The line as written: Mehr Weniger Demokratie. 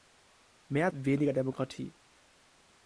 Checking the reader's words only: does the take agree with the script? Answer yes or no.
yes